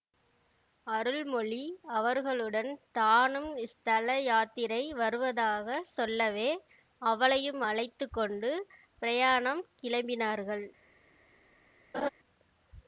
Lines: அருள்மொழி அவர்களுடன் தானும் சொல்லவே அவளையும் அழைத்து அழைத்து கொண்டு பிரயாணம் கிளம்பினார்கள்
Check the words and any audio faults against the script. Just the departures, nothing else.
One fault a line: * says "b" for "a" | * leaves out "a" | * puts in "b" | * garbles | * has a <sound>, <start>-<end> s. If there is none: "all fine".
* puts in "ஸ்தல யாத்திரை வருவதாக"
* leaves out "அழைத்து"
* has a laugh, 11.9-12.1 s